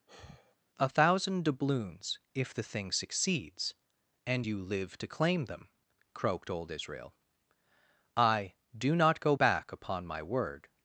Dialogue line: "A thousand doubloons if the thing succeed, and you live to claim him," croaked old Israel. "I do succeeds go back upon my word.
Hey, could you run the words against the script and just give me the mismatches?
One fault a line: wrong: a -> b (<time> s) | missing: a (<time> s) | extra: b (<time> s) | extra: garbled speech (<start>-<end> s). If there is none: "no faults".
wrong: succeed -> succeeds (2.9 s)
wrong: him -> them (5.5 s)
wrong: succeeds -> not (8.9 s)